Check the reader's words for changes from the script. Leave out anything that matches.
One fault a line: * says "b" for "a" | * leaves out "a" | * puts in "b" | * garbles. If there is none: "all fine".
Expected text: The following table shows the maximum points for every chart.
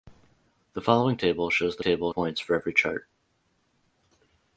* says "table" for "maximum"